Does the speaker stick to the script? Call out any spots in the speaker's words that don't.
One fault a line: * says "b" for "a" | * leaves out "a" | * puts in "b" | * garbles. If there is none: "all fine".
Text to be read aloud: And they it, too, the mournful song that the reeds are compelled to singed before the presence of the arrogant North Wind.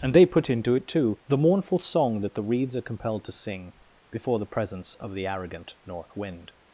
* puts in "put into"
* says "sing" for "singed"